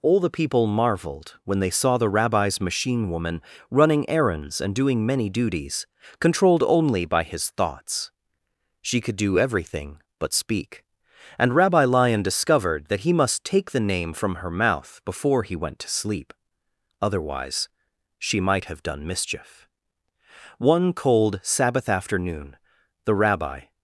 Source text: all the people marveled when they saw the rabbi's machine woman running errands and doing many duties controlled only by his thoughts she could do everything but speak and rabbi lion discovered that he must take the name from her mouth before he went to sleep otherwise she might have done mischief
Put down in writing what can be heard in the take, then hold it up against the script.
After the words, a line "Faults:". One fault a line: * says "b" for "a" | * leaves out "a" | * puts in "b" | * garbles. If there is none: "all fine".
all the people marveled when they saw the rabbi's machine woman running errands and doing many duties controlled only by his thoughts she could do everything but speak and rabbi lion discovered that he must take the name from her mouth before he went to sleep otherwise she might have done mischief one cold sabbath afternoon the rabbi
Faults:
* puts in "one cold sabbath afternoon the rabbi"